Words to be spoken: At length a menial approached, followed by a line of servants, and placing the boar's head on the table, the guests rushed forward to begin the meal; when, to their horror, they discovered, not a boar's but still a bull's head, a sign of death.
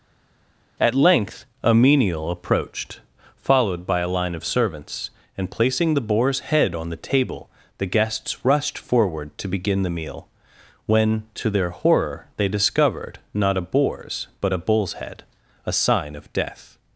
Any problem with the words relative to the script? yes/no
yes